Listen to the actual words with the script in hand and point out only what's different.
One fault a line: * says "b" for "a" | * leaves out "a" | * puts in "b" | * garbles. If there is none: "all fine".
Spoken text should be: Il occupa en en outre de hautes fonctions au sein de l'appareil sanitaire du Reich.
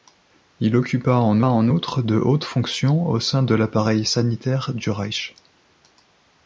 all fine